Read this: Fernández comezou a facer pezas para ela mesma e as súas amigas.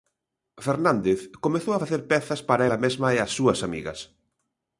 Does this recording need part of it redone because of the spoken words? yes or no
no